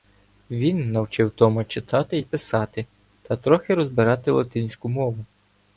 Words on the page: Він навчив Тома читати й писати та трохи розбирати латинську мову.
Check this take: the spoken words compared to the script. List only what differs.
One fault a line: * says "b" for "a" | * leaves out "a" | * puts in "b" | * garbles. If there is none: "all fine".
all fine